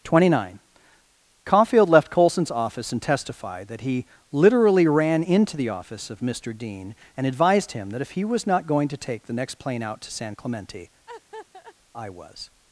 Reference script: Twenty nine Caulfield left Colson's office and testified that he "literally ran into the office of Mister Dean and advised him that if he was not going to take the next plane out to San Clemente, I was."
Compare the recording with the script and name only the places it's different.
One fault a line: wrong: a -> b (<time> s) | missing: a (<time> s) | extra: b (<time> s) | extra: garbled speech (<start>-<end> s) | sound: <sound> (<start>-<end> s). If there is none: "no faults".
sound: laugh (11.1-11.7 s)